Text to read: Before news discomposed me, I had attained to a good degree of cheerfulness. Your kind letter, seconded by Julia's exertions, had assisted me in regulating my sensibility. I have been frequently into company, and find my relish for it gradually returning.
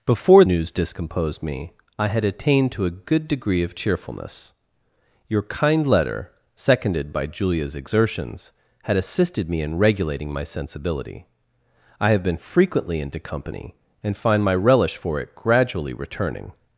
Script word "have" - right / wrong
right